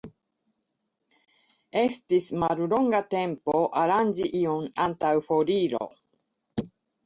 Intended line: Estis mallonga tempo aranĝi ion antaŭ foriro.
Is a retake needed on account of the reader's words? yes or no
no